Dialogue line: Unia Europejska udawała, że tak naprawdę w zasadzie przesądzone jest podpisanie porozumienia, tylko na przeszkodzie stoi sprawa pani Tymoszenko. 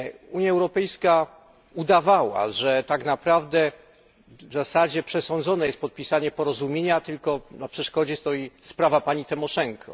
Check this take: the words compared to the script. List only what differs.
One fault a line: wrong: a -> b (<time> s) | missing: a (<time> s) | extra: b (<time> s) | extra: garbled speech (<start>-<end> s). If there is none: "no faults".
no faults